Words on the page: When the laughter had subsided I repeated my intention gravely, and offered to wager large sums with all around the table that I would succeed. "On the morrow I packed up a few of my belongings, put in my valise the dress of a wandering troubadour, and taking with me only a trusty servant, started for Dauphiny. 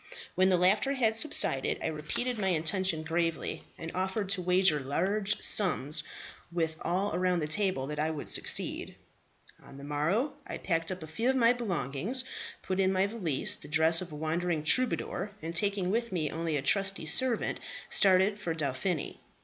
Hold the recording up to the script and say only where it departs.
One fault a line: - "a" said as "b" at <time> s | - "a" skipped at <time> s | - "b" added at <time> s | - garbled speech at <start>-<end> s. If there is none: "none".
none